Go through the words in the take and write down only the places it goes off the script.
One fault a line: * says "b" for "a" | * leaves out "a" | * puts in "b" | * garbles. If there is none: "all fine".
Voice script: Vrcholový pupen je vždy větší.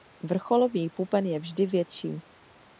all fine